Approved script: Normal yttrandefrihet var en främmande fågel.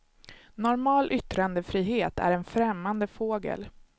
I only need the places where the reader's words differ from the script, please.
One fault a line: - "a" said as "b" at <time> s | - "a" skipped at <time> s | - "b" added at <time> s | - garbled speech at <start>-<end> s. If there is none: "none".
- "var" said as "är" at 2.2 s